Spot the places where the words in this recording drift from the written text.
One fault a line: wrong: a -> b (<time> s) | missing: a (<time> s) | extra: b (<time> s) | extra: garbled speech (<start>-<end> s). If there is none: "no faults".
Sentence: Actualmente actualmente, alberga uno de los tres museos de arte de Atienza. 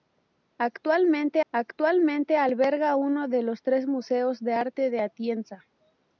no faults